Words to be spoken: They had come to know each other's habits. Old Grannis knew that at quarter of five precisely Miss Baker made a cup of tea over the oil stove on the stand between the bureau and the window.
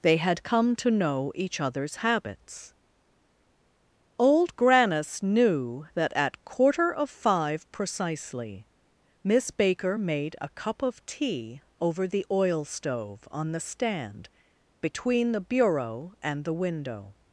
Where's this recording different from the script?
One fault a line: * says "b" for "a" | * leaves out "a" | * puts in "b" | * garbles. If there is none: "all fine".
all fine